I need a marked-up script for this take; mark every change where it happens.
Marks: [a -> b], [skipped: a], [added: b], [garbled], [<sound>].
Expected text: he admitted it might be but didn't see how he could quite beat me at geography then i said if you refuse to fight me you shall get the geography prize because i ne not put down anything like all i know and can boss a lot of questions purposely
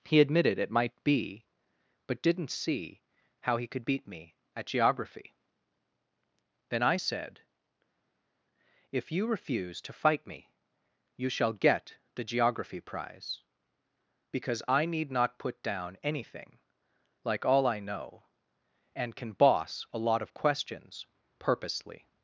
he admitted it might be but didn't see how he could [skipped: quite] beat me at geography then i said if you refuse to fight me you shall get the geography prize because i [ne -> need] not put down anything like all i know and can boss a lot of questions purposely